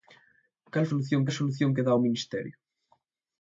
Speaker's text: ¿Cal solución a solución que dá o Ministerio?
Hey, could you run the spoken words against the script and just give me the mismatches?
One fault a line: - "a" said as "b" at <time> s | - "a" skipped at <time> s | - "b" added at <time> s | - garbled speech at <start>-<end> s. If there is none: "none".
none